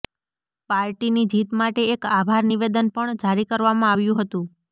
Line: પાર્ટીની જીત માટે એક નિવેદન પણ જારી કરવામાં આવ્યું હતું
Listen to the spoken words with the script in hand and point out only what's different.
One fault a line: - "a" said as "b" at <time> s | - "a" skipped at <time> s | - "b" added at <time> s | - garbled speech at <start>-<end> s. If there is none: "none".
- "આભાર" added at 2.1 s